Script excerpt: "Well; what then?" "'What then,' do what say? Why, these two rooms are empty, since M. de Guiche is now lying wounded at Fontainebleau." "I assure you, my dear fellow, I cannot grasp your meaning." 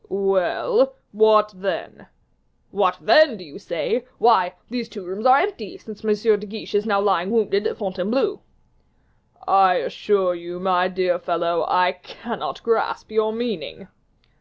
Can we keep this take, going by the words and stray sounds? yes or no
no